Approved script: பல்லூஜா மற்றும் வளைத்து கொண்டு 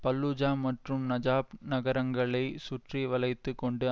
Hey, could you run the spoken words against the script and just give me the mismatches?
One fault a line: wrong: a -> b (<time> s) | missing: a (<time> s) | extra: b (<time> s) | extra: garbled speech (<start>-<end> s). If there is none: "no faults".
extra: நஜாப் நகரங்களை சுற்றி (1.1 s)